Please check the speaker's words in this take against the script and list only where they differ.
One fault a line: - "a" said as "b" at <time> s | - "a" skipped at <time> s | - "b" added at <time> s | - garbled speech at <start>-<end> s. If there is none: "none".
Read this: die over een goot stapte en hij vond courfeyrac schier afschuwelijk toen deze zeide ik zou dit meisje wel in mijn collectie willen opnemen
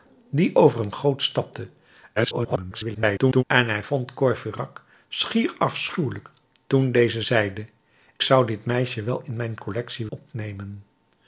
- garbled speech at 2.2-3.4 s
- "ik" skipped at 7.7 s
- "willen" skipped at 10.1 s